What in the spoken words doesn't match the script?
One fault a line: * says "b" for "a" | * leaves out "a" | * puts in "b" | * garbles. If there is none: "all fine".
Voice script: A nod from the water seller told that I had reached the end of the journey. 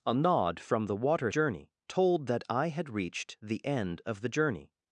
* says "journey" for "seller"